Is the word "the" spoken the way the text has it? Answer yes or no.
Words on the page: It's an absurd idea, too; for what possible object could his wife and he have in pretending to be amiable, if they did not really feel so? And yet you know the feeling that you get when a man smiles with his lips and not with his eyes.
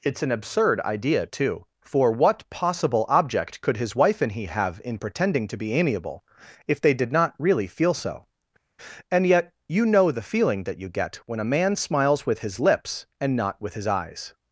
yes